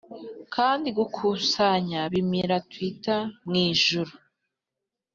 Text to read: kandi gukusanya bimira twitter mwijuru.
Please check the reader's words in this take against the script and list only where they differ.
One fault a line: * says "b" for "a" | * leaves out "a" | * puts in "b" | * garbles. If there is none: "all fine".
all fine